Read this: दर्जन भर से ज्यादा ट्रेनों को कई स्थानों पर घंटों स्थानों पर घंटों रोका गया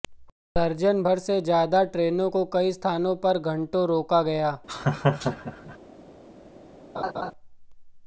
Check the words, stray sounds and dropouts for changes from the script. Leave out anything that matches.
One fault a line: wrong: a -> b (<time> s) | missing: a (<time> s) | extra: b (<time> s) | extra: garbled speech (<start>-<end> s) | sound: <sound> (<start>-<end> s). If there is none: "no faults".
missing: स्थानों पर घंटों (3.9 s)
sound: laugh (4.7-5.8 s)
sound: laugh (6.9-7.3 s)